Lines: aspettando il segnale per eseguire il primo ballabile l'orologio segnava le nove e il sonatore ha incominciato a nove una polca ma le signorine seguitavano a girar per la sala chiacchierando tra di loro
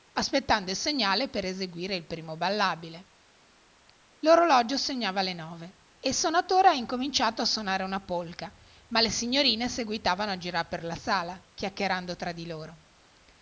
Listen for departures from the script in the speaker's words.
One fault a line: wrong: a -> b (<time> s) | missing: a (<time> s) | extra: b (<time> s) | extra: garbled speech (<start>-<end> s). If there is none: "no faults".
wrong: nove -> sonare (7.5 s)